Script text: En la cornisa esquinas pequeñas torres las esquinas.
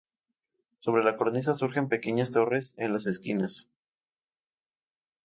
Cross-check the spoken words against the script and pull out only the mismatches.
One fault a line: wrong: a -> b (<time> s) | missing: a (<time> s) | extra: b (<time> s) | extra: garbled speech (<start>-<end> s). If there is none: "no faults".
wrong: En -> Sobre (0.8 s)
wrong: esquinas -> surgen (1.5 s)
extra: en (2.8 s)